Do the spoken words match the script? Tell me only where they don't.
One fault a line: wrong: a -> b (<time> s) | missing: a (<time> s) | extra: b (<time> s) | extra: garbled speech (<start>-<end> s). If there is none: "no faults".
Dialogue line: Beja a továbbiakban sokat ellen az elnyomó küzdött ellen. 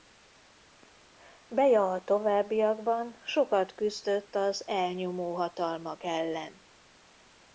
wrong: ellen -> küzdött (3.8 s)
wrong: küzdött -> hatalmak (5.3 s)